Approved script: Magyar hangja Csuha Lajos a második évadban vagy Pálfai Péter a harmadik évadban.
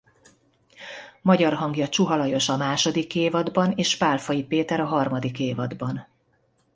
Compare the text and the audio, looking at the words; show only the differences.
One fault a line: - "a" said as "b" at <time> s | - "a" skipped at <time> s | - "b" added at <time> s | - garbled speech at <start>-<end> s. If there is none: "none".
- "vagy" said as "és" at 3.7 s